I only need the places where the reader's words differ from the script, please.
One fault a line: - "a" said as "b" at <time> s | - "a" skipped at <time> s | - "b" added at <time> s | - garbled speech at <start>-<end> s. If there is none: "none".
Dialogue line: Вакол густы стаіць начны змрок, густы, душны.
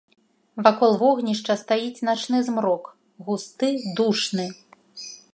- "густы" said as "вогнішча" at 1.0 s